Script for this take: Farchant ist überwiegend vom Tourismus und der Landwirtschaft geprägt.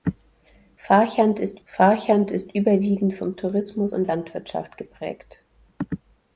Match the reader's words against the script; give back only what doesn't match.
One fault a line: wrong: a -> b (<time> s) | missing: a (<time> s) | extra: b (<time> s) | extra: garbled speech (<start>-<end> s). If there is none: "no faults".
extra: farchant ist (1.7 s)
missing: der (4.0 s)